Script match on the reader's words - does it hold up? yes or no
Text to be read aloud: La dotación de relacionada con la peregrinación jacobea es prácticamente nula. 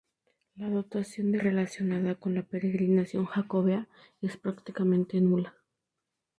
yes